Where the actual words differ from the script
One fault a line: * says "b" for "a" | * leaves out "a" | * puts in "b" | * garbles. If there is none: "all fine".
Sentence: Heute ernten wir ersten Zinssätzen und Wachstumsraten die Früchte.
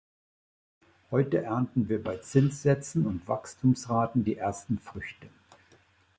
* says "bei" for "ersten"
* puts in "ersten"